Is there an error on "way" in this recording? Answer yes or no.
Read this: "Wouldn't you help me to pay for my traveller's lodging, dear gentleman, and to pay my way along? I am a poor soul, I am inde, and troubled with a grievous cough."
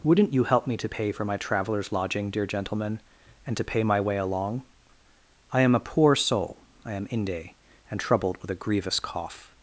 no